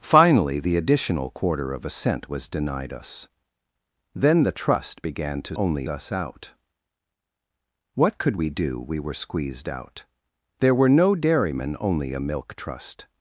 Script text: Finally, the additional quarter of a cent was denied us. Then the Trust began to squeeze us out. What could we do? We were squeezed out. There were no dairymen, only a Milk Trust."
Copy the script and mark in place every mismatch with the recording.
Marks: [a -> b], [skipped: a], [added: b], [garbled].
Finally, the additional quarter of a cent was denied us. Then the Trust began to [squeeze -> only] us out. What could we do? We were squeezed out. There were no dairymen, only a Milk Trust."